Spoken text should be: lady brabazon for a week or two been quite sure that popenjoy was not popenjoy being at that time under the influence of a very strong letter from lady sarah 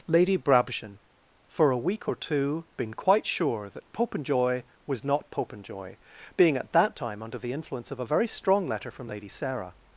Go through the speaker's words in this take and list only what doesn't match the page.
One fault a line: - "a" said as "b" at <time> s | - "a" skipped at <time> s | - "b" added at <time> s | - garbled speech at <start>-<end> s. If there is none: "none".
none